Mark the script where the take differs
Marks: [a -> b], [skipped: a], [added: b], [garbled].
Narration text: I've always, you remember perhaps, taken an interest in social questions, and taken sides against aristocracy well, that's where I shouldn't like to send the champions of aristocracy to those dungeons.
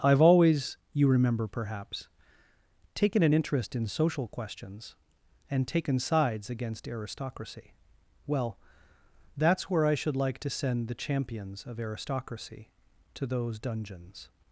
I've always, you remember perhaps, taken an interest in social questions, and taken sides against aristocracy well, that's where I [shouldn't -> should] like to send the champions of aristocracy to those dungeons.